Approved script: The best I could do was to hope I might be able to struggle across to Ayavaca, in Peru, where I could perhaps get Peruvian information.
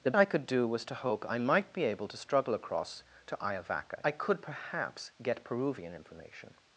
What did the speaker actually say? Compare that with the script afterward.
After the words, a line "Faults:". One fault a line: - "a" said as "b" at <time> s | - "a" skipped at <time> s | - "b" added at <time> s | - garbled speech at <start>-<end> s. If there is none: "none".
The I could do was to hope I might be able to struggle across to Ayavaca, I could perhaps get Peruvian information.
Faults:
- "best" skipped at 0.1 s
- "in Peru where" skipped at 4.0 s